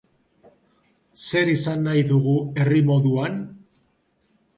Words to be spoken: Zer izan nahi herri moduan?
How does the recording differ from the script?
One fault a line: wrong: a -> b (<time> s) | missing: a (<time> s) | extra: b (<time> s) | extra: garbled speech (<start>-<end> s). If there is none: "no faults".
extra: dugu (2.1 s)